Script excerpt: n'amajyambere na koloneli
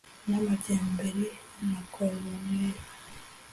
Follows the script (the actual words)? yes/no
yes